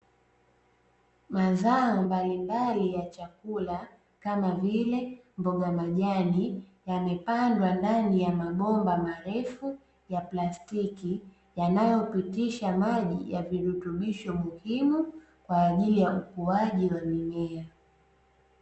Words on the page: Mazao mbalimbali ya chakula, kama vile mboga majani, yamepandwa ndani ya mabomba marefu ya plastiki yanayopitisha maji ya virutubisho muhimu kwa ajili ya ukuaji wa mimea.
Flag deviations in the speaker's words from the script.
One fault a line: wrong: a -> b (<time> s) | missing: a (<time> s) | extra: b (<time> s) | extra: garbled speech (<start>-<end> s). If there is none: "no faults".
no faults